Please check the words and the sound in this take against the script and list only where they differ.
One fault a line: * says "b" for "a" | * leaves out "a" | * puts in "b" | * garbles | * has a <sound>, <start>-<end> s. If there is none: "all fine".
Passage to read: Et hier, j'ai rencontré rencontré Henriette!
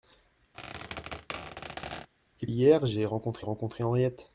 * has a squeak, 0.5-2.1 s